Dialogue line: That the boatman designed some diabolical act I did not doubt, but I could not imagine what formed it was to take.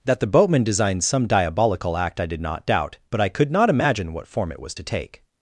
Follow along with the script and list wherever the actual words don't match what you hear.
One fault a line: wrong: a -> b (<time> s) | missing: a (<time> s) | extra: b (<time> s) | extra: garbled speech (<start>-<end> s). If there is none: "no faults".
wrong: formed -> form (4.3 s)